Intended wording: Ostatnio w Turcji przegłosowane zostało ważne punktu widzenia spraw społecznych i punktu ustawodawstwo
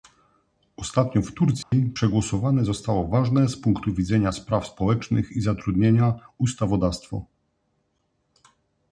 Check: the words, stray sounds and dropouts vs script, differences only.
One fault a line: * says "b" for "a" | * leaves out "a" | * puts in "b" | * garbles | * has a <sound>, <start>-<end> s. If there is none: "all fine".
* has a dropout, 1.6-1.7 s
* puts in "z"
* says "zatrudnienia" for "punktu"